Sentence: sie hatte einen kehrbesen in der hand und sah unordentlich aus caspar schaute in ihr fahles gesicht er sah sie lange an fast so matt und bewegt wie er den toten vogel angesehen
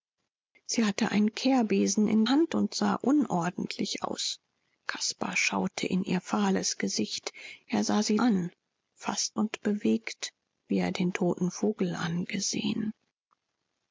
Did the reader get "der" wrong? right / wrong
wrong